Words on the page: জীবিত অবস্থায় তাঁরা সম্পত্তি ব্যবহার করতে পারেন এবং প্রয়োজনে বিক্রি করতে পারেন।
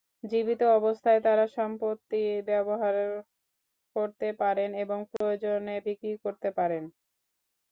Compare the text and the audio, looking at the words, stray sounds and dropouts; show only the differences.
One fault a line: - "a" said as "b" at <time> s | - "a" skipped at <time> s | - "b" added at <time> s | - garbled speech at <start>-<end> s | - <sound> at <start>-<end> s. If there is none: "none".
- dropout at 5.2-5.2 s